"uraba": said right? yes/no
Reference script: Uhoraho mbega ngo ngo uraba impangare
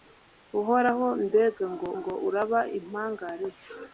yes